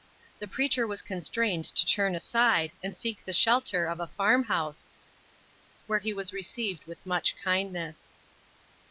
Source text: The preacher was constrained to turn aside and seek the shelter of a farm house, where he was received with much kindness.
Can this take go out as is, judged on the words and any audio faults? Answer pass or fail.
pass